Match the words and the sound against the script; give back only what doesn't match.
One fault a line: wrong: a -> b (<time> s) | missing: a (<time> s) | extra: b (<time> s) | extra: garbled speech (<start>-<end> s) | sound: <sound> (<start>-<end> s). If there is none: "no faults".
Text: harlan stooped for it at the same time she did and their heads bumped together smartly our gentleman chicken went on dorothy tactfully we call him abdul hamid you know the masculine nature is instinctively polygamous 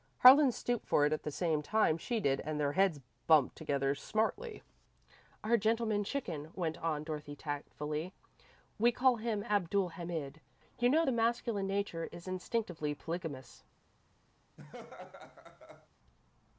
sound: laugh (14.6-15.9 s)